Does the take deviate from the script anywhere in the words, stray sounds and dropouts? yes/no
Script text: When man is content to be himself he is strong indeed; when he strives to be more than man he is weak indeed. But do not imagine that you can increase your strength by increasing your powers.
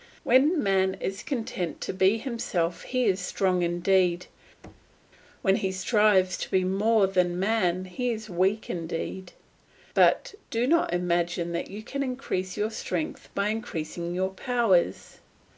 yes